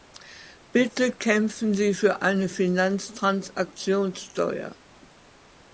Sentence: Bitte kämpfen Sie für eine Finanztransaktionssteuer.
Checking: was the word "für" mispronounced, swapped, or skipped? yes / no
no